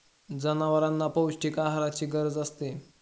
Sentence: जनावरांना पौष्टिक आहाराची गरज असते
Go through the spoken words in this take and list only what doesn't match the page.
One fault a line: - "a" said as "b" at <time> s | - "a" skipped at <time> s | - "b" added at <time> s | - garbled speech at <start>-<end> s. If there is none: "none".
none